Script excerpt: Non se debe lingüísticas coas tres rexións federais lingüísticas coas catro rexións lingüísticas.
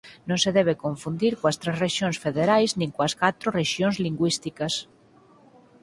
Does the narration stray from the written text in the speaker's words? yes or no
yes